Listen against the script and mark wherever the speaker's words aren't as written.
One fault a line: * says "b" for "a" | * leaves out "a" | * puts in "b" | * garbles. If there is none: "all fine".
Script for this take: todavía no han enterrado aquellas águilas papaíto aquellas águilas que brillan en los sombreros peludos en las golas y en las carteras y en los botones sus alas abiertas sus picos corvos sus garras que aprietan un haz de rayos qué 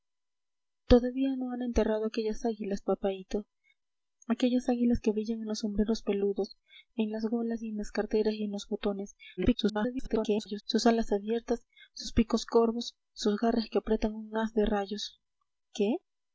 * garbles